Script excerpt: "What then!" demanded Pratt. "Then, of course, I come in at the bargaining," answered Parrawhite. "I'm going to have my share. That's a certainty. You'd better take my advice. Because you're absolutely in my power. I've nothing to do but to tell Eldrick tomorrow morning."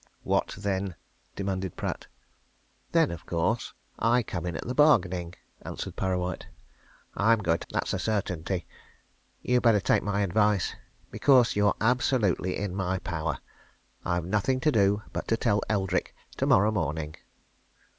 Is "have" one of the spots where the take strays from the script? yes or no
yes